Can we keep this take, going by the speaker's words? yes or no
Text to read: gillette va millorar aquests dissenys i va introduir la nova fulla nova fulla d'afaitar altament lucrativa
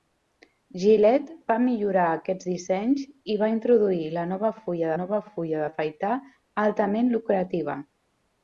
yes